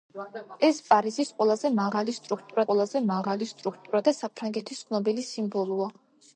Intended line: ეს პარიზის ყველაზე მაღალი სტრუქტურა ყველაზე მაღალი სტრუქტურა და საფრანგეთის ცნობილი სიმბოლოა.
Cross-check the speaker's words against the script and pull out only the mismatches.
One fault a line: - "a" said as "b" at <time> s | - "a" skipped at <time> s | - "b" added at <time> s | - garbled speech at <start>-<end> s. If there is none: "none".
none